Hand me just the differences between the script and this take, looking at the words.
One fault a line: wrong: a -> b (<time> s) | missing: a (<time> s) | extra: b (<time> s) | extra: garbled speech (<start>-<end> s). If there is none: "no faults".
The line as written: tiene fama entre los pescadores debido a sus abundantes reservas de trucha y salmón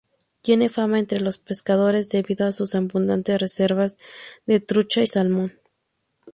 no faults